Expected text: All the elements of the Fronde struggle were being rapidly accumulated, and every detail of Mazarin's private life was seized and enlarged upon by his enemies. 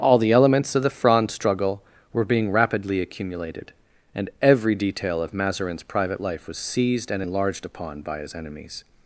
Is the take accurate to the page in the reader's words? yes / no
yes